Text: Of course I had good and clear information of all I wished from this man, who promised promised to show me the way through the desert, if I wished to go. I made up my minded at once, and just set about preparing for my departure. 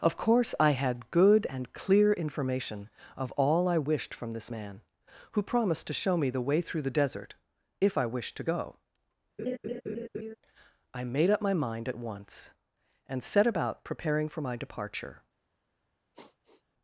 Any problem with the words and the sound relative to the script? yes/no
yes